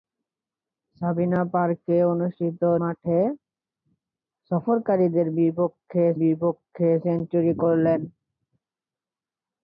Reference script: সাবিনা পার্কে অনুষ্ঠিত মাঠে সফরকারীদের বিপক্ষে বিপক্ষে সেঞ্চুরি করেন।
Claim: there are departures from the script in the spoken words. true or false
false